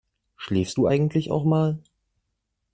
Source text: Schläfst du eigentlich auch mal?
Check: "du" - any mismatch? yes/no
no